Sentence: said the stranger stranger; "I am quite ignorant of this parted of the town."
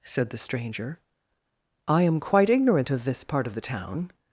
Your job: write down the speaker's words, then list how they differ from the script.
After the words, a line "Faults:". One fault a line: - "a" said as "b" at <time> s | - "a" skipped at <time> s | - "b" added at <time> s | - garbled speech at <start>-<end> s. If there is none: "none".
said the stranger; "I am quite ignorant of this part of the town."
Faults:
- "stranger" skipped at 1.0 s
- "parted" said as "part" at 3.2 s